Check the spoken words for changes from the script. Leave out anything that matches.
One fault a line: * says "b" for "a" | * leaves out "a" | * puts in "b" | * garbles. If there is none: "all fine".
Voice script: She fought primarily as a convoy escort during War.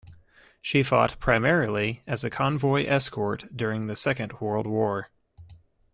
* puts in "the Second World"